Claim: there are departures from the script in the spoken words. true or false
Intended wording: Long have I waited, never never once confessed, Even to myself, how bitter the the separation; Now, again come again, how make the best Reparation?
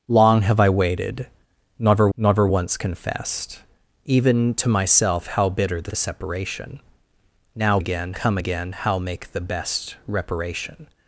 false